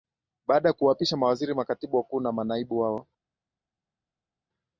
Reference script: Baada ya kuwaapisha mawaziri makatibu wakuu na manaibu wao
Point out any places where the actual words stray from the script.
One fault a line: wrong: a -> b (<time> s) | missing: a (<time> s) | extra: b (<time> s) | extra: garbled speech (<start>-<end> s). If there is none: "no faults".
no faults